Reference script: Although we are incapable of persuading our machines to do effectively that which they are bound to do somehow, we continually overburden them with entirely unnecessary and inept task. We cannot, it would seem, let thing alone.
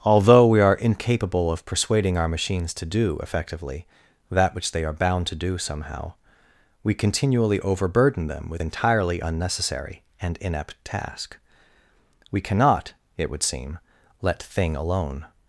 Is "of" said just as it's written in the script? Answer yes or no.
yes